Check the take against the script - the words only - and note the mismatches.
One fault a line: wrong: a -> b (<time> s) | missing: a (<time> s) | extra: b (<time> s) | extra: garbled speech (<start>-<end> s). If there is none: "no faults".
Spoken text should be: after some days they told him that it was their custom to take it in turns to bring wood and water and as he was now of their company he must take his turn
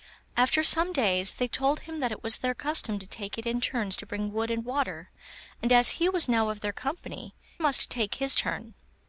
missing: he (7.3 s)